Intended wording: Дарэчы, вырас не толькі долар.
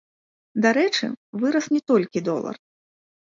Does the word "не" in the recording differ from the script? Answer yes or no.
no